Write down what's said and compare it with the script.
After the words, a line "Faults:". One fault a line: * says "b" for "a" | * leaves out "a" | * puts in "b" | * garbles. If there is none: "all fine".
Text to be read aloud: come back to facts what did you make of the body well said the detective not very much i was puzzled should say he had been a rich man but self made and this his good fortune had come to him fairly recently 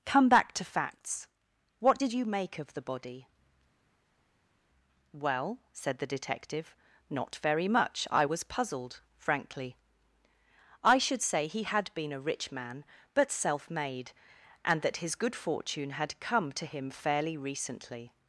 come back to facts what did you make of the body well said the detective not very much i was puzzled frankly i should say he had been a rich man but self made and that his good fortune had come to him fairly recently
Faults:
* puts in "frankly i"
* says "that" for "this"